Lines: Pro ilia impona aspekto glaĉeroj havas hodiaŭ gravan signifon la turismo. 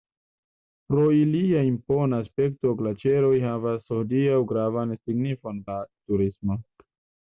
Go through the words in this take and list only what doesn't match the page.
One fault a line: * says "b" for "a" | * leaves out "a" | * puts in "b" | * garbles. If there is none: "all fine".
all fine